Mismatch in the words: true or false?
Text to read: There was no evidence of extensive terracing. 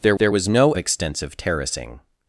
true